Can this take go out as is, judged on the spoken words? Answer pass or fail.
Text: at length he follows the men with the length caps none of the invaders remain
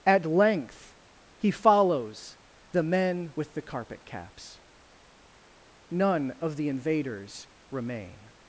fail